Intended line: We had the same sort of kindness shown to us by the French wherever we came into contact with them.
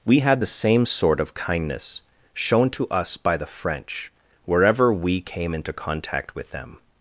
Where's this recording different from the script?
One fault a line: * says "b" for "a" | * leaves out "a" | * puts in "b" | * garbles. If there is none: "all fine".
all fine